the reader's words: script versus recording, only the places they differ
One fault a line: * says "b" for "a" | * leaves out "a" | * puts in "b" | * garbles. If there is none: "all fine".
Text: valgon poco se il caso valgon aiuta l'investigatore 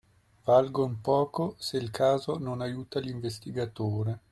* says "non" for "valgon"